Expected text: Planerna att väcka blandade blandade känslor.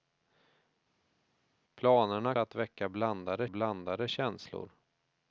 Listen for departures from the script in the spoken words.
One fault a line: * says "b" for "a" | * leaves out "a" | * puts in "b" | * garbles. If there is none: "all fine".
all fine